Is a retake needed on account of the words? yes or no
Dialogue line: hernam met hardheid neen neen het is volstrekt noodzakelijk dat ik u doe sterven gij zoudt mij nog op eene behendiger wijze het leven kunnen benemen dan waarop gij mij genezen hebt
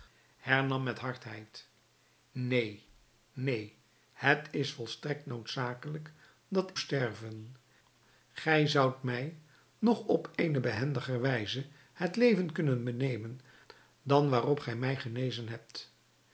yes